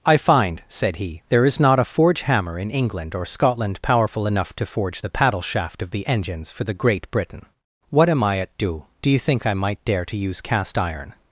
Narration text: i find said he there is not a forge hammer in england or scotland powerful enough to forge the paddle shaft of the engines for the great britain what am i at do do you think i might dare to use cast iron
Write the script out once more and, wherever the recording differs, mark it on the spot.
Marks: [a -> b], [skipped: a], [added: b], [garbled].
i find said he there is not a forge hammer in england or scotland powerful enough to forge the paddle shaft of the engines for the great britain what am i at do do you think i might dare to use cast iron